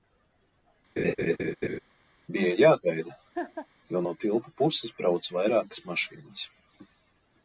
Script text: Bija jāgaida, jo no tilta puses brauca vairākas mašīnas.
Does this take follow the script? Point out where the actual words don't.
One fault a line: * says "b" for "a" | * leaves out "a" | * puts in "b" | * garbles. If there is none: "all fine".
all fine